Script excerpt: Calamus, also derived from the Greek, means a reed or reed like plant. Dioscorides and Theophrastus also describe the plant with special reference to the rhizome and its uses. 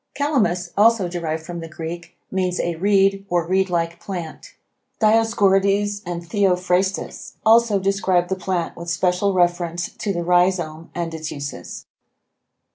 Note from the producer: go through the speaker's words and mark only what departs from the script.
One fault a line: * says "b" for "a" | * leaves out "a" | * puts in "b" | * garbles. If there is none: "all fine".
all fine